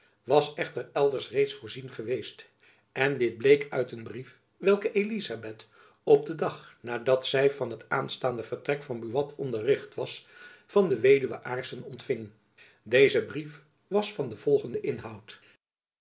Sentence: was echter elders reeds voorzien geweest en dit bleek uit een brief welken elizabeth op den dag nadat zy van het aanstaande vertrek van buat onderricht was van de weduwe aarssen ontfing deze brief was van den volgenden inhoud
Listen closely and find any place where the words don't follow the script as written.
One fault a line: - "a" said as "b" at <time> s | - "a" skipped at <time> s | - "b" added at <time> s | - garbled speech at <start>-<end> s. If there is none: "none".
none